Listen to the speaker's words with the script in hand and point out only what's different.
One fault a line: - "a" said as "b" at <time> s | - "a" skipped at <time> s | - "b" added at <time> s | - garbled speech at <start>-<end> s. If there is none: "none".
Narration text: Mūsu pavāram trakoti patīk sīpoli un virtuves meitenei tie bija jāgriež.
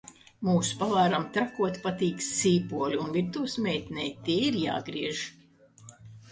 - "bija" said as "ir" at 4.5 s